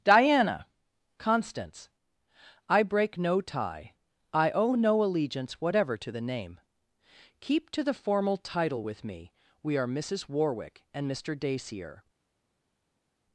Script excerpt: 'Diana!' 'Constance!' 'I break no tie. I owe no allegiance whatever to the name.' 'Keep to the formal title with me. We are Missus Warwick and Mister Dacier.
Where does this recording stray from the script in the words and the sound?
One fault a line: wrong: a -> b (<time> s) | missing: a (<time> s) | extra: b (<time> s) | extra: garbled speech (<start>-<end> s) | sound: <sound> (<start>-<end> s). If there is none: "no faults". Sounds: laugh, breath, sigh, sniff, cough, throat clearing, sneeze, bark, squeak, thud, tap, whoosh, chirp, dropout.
no faults